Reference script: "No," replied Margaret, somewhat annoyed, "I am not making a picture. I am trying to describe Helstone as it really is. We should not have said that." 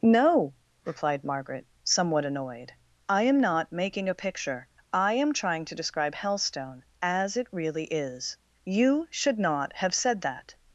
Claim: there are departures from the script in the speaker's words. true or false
true